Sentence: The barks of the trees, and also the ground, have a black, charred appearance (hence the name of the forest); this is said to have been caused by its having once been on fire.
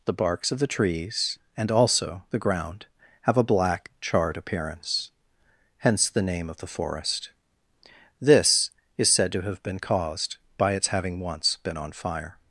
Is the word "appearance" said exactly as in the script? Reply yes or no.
yes